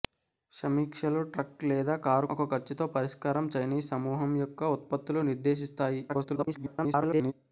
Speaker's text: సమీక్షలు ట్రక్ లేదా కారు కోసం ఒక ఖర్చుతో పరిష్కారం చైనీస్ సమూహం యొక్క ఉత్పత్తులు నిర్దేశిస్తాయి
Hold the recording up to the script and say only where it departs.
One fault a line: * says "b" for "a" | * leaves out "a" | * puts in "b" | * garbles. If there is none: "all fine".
* leaves out "కోసం"
* garbles